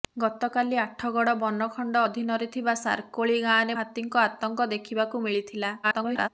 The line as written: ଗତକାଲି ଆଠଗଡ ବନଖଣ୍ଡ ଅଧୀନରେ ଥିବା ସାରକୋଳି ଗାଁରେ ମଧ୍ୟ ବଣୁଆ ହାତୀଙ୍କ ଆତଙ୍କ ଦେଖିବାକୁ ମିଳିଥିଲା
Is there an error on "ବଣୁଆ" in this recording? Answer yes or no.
yes